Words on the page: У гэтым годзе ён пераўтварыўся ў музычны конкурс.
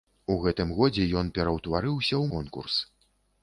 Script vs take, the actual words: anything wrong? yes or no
yes